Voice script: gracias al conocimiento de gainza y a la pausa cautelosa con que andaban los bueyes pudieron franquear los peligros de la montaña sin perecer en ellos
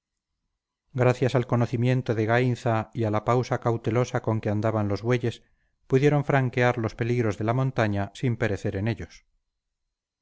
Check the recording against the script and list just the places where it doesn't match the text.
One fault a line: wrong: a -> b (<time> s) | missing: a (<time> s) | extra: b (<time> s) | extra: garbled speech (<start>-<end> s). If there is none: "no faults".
no faults